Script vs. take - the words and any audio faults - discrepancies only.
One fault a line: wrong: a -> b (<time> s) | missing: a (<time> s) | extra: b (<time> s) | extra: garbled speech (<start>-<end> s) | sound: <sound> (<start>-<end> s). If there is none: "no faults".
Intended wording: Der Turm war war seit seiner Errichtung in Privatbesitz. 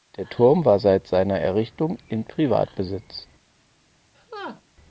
missing: war (0.8 s)
sound: laugh (4.1-4.6 s)